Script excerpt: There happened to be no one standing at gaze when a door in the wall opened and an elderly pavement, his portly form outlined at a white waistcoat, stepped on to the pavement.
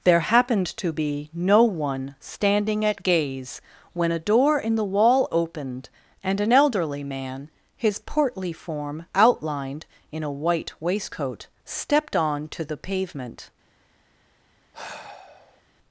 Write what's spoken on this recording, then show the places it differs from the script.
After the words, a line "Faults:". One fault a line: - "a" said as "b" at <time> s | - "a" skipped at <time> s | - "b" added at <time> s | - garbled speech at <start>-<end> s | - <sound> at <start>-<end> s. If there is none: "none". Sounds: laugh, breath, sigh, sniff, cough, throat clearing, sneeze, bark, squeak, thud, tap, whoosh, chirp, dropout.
There happened to be no one standing at gaze when a door in the wall opened and an elderly man, his portly form outlined in a white waistcoat, stepped on to the pavement.
Faults:
- "pavement" said as "man" at 7.0 s
- "at" said as "in" at 10.1 s
- sigh at 14.7-15.6 s